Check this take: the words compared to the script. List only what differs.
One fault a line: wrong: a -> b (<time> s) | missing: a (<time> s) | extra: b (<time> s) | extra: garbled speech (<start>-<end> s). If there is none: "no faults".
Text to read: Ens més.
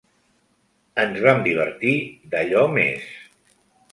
extra: vam divertir d'allò (1.2 s)